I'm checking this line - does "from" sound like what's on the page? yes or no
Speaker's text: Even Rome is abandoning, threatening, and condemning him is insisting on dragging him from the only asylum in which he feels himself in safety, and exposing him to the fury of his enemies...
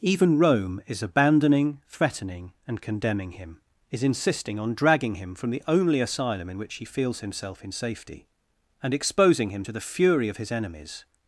yes